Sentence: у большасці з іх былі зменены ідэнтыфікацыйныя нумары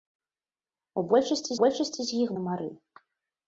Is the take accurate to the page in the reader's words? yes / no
no